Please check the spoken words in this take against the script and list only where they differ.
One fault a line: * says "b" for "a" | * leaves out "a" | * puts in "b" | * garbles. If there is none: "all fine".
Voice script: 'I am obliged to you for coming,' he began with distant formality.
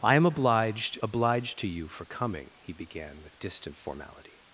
* puts in "obliged"